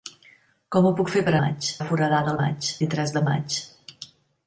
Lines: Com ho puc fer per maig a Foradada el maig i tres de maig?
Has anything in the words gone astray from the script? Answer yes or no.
no